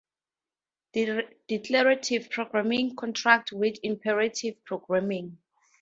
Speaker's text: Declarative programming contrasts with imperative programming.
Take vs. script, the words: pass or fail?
pass